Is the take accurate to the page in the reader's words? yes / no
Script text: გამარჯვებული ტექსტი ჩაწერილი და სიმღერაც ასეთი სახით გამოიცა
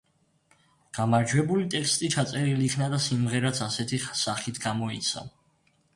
no